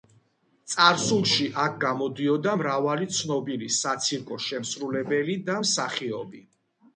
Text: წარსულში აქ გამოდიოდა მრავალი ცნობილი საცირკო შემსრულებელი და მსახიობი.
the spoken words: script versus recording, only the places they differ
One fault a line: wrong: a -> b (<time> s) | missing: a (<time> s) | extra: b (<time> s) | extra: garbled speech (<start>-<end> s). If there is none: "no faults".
no faults